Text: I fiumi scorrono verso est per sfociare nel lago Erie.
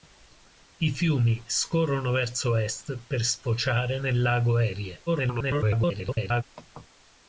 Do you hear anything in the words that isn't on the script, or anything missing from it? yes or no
yes